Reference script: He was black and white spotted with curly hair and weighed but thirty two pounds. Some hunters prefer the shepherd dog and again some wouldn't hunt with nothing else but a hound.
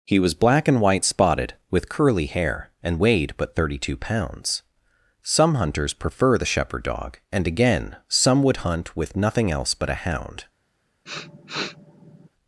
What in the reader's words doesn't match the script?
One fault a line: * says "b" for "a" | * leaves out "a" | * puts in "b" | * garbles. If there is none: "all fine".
* says "would" for "wouldn't"